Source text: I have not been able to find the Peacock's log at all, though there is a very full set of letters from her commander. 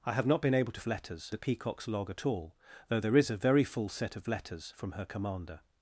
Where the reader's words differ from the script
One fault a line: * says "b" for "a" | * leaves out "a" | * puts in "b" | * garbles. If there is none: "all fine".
* says "letters" for "find"